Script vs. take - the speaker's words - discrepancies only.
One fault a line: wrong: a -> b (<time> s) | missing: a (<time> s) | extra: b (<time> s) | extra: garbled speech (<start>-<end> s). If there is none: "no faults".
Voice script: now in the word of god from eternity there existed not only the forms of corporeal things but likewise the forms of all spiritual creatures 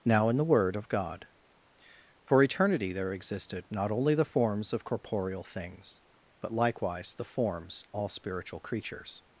wrong: from -> for (2.2 s)
missing: of (7.8 s)